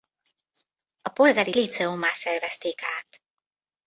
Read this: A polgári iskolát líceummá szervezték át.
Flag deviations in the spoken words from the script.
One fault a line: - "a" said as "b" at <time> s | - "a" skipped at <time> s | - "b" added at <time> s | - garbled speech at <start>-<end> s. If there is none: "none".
- "iskolát" skipped at 1.6 s